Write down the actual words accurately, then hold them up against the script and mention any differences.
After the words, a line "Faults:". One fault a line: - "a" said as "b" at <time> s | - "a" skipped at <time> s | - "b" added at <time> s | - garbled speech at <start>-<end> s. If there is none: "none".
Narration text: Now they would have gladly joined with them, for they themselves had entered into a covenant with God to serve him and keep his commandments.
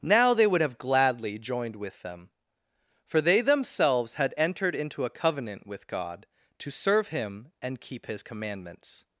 Now they would have gladly joined with them, for they themselves had entered into a covenant with God to serve him and keep his commandments.
Faults:
none